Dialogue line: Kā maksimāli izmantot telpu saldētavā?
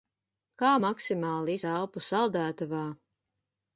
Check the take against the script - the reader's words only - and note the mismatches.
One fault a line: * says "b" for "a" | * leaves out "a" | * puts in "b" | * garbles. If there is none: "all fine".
* leaves out "izmantot"